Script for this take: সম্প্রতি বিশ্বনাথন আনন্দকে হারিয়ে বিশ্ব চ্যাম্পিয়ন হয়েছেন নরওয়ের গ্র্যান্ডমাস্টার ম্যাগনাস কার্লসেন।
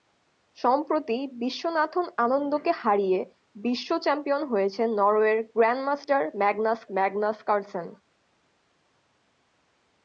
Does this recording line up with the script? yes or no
no